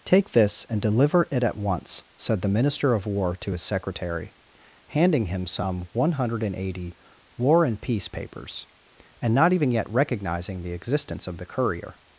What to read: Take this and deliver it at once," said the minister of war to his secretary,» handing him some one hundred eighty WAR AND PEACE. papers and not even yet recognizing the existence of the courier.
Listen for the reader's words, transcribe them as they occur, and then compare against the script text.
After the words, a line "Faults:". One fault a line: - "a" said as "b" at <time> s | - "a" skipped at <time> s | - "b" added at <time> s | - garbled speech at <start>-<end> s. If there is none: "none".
Take this and deliver it at once," said the minister of war to his secretary,» handing him some one hundred eighty WAR AND PEACE. papers and not even yet recognizing the existence of the courier.
Faults:
none